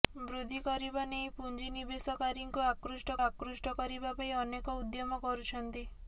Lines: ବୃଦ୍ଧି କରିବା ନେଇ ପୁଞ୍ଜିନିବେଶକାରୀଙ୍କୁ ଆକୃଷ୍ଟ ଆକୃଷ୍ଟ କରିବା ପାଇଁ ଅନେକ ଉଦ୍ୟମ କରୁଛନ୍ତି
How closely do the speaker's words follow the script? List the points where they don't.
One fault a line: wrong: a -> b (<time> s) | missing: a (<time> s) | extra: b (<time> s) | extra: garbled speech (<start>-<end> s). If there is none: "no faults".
no faults